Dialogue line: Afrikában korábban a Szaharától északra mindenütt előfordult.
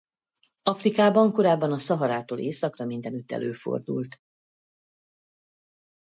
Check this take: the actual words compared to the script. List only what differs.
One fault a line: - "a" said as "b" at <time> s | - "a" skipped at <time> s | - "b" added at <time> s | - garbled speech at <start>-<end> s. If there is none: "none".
none